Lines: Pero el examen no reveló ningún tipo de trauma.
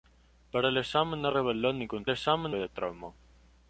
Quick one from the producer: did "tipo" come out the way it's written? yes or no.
no